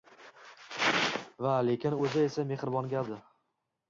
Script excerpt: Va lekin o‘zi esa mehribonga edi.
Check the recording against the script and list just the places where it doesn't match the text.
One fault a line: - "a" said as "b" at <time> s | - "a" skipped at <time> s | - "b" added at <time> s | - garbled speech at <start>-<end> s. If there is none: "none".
none